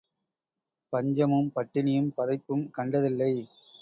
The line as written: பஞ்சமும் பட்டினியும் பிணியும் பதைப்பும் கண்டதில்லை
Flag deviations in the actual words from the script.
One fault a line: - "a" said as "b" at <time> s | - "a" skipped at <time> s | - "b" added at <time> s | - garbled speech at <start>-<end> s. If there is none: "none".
- "பிணியும்" skipped at 2.1 s